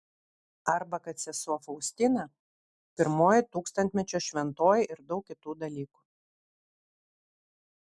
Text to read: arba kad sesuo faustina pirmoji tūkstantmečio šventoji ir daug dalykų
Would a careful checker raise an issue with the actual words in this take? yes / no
yes